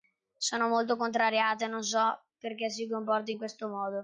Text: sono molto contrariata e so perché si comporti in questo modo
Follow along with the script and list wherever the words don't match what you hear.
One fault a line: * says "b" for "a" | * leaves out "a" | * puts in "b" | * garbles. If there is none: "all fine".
* puts in "non"